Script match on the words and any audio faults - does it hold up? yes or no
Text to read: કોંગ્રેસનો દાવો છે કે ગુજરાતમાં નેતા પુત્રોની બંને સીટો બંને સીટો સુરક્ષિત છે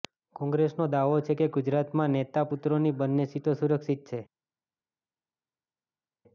no